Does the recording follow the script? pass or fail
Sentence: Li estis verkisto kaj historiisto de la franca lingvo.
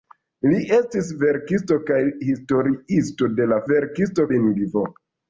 fail